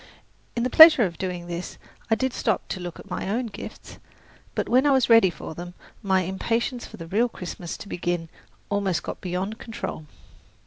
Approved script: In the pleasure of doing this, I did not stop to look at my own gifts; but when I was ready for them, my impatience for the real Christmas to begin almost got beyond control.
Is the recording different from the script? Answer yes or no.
yes